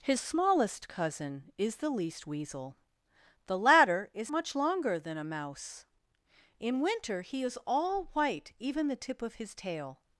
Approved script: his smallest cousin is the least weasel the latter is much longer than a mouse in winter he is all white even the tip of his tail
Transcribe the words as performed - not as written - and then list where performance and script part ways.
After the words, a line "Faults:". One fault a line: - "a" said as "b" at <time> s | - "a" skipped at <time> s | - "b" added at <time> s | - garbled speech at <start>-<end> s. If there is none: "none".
his smallest cousin is the least weasel the latter is much longer than a mouse in winter he is all white even the tip of his tail
Faults:
none